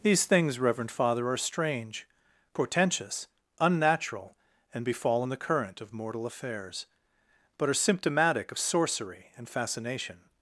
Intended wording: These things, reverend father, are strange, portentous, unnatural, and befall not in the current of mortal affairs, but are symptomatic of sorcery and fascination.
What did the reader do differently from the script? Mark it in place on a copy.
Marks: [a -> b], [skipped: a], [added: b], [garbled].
These things, reverend father, are strange, portentous, unnatural, and befall [skipped: not] in the current of mortal affairs, but are symptomatic of sorcery and fascination.